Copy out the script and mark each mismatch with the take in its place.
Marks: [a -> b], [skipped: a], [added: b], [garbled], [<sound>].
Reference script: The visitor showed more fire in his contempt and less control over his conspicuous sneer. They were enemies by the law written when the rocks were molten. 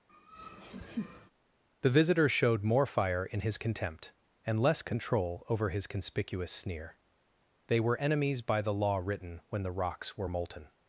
[laugh] The visitor showed more fire in his contempt and less control over his conspicuous sneer. They were enemies by the law written when the rocks were molten.